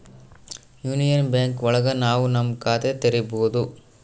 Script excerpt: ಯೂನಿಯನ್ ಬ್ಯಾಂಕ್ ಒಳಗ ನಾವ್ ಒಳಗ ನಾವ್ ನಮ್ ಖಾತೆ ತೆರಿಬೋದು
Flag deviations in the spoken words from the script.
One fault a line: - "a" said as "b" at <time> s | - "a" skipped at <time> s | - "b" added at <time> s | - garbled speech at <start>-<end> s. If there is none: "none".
- "ಒಳಗ ನಾವ್" skipped at 2.2 s